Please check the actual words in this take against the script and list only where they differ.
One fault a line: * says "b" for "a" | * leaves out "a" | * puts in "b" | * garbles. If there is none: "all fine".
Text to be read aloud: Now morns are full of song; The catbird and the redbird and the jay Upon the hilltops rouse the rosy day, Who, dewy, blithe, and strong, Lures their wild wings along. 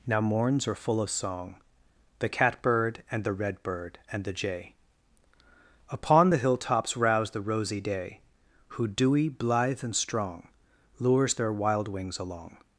all fine